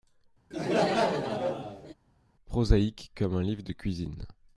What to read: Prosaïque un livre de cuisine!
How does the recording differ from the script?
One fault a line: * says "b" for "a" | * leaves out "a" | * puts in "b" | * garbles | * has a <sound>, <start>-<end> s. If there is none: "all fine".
* has a laugh, 0.5-1.9 s
* puts in "comme"